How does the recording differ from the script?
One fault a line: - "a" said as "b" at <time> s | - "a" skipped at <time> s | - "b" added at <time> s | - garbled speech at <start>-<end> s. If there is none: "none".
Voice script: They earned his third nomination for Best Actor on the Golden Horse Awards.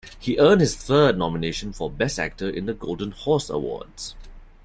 - "They" said as "He" at 0.2 s
- "on" said as "in" at 2.5 s